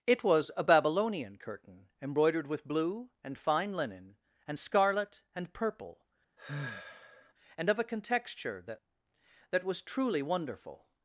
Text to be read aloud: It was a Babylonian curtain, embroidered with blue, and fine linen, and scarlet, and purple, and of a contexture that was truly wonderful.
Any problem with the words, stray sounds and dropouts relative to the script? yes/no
yes